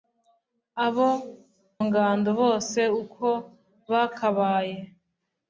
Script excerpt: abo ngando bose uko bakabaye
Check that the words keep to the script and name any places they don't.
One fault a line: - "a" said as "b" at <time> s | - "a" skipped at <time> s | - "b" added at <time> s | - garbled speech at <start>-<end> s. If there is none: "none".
none